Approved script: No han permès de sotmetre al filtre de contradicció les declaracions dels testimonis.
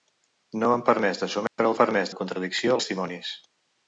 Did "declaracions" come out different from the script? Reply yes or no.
yes